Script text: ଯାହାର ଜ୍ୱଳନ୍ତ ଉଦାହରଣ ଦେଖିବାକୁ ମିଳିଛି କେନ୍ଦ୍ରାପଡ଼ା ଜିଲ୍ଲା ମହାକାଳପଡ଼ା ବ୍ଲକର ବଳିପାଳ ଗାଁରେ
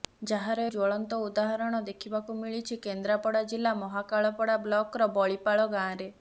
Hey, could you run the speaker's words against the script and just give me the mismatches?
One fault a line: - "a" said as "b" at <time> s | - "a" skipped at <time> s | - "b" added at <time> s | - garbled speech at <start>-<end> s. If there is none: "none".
none